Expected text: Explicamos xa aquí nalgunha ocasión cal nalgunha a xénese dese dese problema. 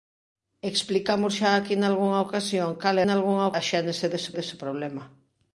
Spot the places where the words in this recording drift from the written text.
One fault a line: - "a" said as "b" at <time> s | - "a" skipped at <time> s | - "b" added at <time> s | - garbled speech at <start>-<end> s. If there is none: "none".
none